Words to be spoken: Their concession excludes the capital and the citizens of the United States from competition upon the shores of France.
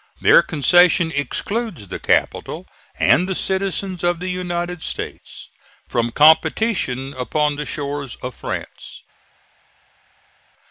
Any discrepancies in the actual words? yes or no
no